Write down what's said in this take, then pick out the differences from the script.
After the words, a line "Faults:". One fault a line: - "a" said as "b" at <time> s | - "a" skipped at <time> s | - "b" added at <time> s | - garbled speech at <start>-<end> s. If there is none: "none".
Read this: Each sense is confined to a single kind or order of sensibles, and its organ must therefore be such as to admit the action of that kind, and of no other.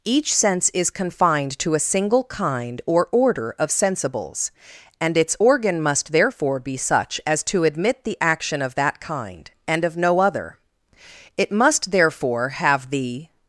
Each sense is confined to a single kind or order of sensibles, and its organ must therefore be such as to admit the action of that kind, and of no other. It must therefore have the
Faults:
- "It must therefore have the" added at 11.4 s